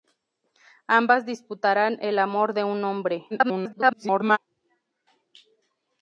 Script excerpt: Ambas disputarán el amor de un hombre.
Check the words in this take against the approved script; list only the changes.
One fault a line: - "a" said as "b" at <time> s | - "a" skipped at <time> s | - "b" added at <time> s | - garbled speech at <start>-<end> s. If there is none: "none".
- garbled speech at 3.3-4.4 s